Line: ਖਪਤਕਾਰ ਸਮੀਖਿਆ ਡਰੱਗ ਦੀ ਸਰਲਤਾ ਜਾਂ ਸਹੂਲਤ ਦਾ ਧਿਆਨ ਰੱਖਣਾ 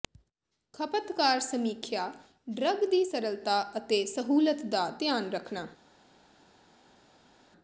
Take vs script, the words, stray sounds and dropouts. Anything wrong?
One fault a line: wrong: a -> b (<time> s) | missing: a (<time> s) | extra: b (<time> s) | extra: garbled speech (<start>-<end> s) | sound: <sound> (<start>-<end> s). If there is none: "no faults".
wrong: ਜਾਂ -> ਅਤੇ (3.8 s)